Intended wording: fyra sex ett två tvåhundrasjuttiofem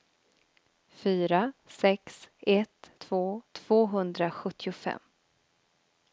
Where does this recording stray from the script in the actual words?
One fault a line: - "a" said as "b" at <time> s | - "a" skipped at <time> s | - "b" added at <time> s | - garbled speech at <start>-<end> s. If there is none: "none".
none